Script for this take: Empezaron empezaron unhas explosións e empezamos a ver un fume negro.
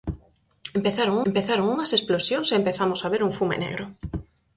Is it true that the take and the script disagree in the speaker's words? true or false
false